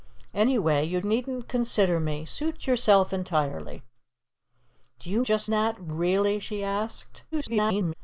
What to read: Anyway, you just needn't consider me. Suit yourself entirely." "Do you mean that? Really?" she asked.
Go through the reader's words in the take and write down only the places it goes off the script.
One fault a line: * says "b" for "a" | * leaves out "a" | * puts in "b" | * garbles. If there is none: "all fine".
* leaves out "just"
* says "just" for "mean"
* garbles